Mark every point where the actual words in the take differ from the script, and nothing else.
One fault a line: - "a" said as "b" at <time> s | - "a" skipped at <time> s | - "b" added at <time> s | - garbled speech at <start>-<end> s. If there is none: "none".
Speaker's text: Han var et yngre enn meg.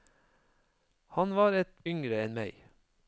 none